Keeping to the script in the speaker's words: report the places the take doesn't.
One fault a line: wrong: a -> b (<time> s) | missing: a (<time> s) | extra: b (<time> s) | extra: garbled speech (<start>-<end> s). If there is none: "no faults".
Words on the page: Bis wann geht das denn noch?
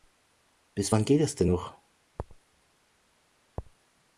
no faults